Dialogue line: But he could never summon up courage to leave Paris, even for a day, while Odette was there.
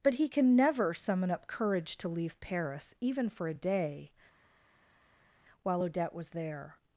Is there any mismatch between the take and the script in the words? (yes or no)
yes